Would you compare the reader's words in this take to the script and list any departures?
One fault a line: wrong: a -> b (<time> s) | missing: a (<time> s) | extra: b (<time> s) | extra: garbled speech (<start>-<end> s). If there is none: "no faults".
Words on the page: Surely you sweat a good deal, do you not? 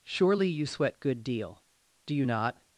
missing: a (1.0 s)